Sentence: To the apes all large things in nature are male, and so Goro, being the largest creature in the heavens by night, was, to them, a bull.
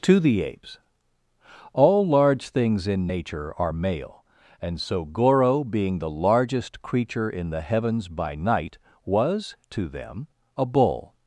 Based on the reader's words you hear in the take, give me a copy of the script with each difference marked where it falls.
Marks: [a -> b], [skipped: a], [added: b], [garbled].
To the apes all large things in nature are male, and so Goro, being the largest creature in the heavens by night, was, to them, a bull.